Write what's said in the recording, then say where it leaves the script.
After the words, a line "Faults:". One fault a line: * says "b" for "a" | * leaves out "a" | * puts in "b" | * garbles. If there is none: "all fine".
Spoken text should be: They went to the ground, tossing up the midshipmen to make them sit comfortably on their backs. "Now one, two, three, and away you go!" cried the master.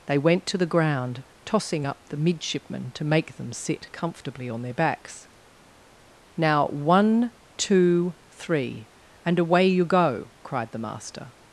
They went to the ground, tossing up the midshipmen to make them sit comfortably on their backs. "Now one, two, three, and away you go!" cried the master.
Faults:
all fine